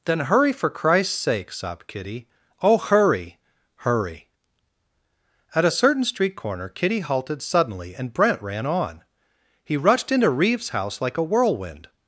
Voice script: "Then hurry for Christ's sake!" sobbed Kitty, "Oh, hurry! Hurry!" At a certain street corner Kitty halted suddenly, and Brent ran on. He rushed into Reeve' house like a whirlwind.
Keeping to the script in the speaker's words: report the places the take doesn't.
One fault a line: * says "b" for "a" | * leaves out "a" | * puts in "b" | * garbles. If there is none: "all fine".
* says "Reeves" for "Reeve"